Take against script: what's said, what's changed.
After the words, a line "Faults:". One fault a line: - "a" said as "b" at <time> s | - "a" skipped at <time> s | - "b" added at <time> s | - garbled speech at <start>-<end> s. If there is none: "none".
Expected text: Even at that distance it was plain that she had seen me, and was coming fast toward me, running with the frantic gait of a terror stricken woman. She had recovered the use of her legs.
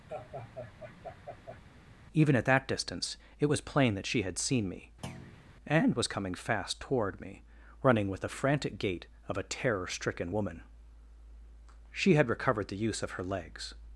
Even at that distance it was plain that she had seen me, and was coming fast toward me, running with the frantic gait of a terror stricken woman. She had recovered the use of her legs.
Faults:
none